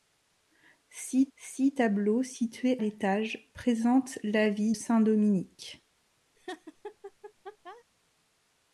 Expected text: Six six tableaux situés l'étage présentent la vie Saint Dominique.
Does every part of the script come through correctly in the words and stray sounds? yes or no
no